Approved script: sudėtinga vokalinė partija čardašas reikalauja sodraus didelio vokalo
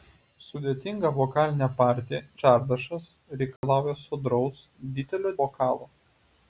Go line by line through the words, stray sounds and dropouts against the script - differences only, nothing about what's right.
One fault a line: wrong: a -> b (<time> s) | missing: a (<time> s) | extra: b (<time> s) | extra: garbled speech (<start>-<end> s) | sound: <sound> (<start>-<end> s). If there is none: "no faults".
sound: dropout (3.6-3.6 s)